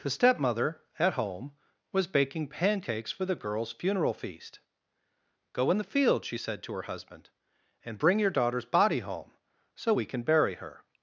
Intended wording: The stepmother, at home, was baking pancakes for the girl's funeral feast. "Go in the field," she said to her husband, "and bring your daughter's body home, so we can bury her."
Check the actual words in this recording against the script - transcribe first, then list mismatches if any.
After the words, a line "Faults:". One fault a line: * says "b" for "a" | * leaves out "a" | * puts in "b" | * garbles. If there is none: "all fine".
The stepmother, at home, was baking pancakes for the girl's funeral feast. "Go in the field," she said to her husband, "and bring your daughter's body home, so we can bury her."
Faults:
all fine